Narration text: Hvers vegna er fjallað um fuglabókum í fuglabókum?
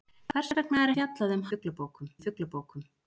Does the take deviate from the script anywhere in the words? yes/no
no